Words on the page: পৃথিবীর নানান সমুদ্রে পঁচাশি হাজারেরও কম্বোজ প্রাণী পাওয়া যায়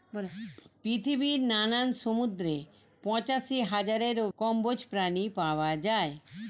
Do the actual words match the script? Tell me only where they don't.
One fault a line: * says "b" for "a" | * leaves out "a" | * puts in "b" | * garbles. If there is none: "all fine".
all fine